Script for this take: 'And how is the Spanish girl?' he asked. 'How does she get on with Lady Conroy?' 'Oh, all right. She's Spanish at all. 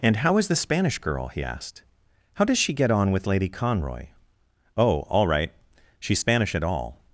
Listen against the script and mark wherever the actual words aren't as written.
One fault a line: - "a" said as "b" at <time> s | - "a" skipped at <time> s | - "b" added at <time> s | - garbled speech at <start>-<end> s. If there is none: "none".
none